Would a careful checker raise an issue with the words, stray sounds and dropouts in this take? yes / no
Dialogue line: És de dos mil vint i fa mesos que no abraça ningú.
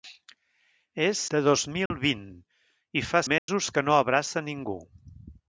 yes